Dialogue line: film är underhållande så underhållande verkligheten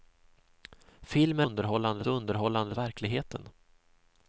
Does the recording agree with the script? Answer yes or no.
yes